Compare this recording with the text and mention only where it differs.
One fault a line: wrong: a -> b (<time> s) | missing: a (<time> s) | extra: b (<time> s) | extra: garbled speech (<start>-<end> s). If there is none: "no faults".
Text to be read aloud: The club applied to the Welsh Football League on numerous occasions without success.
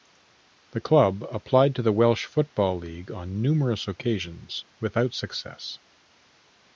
no faults